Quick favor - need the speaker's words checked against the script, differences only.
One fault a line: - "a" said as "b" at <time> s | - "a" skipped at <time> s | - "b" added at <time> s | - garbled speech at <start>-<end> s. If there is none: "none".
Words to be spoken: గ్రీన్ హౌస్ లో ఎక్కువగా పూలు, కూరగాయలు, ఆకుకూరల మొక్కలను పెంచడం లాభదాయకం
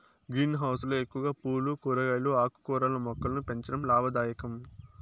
none